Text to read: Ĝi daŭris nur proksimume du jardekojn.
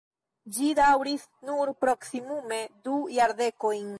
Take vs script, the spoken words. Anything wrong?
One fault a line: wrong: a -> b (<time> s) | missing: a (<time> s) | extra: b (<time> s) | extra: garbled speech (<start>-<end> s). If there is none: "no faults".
no faults